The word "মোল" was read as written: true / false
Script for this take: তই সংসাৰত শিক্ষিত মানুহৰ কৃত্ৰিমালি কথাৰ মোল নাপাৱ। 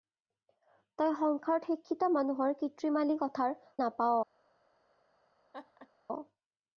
false